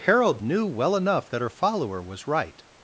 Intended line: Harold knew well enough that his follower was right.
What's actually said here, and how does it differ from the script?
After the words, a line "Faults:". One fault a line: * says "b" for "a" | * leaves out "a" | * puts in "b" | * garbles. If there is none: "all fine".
Harold knew well enough that her follower was right.
Faults:
* says "her" for "his"